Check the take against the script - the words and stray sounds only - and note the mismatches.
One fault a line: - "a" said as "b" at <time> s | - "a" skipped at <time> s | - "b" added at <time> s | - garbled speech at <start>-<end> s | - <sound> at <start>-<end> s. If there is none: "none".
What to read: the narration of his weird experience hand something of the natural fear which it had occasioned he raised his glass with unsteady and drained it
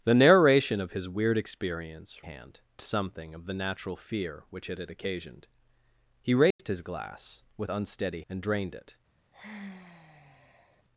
- dropout at 6.5-6.6 s
- sigh at 9.3-10.8 s